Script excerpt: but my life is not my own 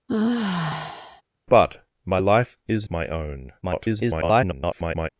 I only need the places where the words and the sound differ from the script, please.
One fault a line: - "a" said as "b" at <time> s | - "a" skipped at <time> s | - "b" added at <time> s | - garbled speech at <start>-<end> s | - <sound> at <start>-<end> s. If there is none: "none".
- sigh at 0.1-1.2 s
- "not" skipped at 2.9 s
- garbled speech at 3.6-5.1 s